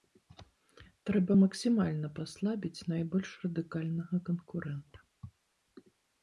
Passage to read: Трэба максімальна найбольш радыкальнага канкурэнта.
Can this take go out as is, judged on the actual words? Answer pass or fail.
fail